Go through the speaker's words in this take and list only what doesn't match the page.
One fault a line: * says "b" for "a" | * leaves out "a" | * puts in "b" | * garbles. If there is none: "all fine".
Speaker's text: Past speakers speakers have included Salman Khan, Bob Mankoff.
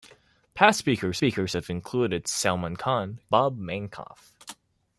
all fine